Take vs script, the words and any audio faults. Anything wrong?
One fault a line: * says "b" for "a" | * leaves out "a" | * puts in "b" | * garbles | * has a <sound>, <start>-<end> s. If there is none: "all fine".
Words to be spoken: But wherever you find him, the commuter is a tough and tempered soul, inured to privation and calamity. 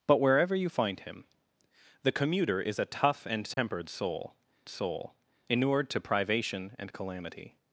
* has a dropout, 3.5-3.6 s
* puts in "soul"